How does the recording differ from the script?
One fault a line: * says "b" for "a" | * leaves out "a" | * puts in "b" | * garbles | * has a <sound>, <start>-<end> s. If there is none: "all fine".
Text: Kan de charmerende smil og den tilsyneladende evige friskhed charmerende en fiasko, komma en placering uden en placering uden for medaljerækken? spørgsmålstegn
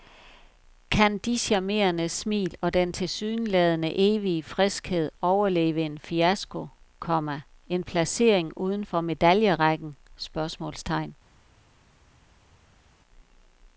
* says "overleve" for "charmerende"
* leaves out "en placering uden"